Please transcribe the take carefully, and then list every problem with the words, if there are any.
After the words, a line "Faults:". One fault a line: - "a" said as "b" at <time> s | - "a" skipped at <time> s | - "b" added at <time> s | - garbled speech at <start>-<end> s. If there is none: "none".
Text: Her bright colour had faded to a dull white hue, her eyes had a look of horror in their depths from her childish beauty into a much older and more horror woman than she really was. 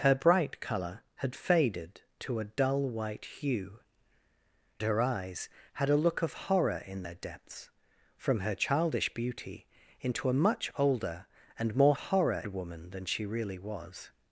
Her bright colour had faded to a dull white hue, her eyes had a look of horror in their depths from her childish beauty into a much older and more horror woman than she really was.
Faults:
none